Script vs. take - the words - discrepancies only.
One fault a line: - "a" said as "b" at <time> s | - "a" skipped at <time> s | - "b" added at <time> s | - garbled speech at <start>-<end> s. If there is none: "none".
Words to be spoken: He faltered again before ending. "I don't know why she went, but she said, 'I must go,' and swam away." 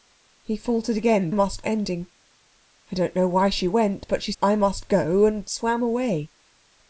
- "before" said as "must" at 1.3 s
- "said" skipped at 4.3 s